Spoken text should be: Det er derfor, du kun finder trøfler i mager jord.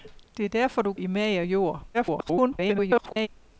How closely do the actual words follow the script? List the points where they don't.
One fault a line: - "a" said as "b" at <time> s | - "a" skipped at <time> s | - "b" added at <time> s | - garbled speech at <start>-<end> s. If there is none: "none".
- "kun finder trøfler" skipped at 0.9 s
- garbled speech at 1.9-3.3 s